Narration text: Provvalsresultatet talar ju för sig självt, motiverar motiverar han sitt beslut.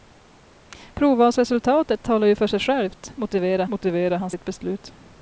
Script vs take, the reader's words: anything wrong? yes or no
no